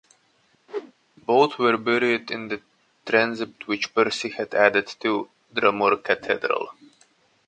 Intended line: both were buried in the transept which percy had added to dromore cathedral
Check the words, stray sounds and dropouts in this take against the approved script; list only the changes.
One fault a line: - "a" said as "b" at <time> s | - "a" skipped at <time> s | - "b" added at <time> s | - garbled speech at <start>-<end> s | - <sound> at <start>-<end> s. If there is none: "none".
- whoosh at 0.7-0.9 s